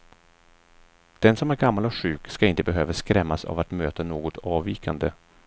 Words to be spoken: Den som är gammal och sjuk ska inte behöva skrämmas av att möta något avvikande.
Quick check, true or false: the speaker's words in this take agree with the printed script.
true